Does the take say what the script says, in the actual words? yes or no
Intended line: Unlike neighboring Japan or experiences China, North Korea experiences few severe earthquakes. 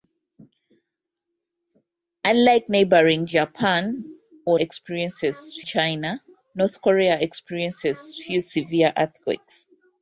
yes